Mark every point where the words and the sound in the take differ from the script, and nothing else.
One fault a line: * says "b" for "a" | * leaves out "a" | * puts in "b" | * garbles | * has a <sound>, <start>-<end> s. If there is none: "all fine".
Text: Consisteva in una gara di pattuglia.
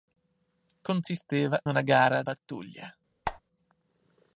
* leaves out "in"
* leaves out "di"
* has a squeak, 3.3-3.4 s